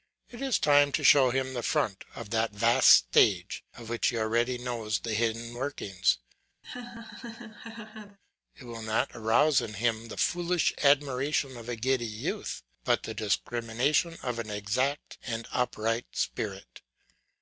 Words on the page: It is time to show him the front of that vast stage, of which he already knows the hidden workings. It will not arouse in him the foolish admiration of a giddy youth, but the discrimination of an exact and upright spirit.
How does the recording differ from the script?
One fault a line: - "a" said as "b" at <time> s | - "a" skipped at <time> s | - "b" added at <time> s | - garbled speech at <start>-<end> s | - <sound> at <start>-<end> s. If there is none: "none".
- laugh at 6.6-8.2 s